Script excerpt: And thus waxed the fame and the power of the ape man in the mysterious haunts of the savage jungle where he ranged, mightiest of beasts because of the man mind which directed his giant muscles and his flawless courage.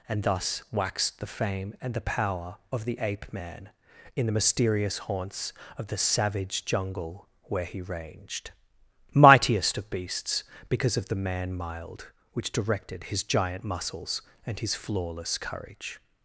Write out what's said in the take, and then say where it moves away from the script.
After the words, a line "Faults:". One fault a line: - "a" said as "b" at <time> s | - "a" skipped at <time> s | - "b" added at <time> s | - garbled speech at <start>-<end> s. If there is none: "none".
And thus waxed the fame and the power of the ape man in the mysterious haunts of the savage jungle where he ranged, mightiest of beasts because of the man mild which directed his giant muscles and his flawless courage.
Faults:
- "mind" said as "mild" at 11.5 s